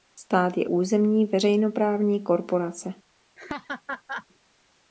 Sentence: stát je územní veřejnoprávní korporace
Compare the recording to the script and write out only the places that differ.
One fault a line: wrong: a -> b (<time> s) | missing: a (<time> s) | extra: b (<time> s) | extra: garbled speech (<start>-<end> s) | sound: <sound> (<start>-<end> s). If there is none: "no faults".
sound: laugh (3.4-4.3 s)